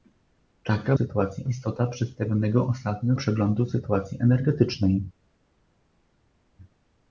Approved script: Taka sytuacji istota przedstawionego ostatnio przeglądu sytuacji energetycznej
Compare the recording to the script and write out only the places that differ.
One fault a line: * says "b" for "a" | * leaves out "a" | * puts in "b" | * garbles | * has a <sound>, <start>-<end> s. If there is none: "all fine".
all fine